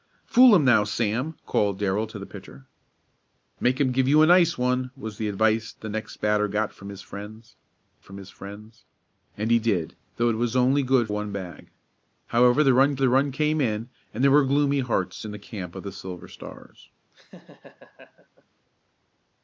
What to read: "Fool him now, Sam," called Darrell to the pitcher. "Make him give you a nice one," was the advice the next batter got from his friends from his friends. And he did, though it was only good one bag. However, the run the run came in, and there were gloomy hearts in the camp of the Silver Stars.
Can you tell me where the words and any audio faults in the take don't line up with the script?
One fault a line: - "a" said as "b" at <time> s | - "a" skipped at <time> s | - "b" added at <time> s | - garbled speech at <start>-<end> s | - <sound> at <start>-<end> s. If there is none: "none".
- laugh at 17.1-18.4 s